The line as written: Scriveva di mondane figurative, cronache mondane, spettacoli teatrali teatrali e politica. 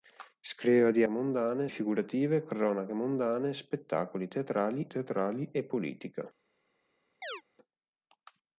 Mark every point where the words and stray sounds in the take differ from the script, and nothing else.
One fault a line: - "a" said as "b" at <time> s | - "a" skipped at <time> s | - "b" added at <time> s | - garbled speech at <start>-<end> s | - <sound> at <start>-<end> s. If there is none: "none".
- chirp at 7.2-7.4 s